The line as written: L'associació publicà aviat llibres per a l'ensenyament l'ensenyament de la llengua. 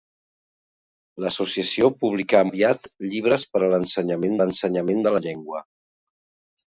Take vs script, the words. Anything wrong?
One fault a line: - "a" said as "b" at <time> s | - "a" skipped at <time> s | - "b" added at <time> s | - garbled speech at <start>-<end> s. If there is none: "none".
none